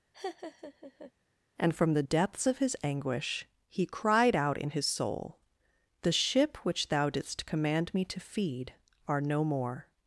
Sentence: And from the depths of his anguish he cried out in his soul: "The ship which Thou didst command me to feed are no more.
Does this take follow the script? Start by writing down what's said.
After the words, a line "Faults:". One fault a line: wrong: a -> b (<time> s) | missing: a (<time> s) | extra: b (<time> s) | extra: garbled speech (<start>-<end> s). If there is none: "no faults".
And from the depths of his anguish he cried out in his soul: "The ship which Thou didst command me to feed are no more.
Faults:
no faults